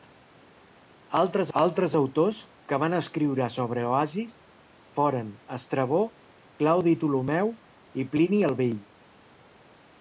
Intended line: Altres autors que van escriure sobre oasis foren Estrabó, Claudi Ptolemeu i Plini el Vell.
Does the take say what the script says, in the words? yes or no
no